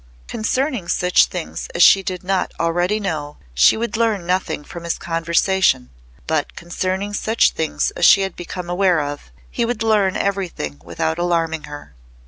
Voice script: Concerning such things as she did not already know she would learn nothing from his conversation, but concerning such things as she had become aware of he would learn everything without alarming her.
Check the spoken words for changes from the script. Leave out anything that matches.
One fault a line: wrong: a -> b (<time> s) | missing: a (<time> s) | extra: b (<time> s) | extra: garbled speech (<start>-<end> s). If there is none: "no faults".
no faults